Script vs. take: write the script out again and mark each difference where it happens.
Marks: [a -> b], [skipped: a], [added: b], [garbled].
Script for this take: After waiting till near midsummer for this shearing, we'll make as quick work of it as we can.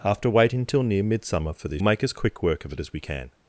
After waiting till near midsummer for this [skipped: shearing, we'll] make as quick work of it as we can.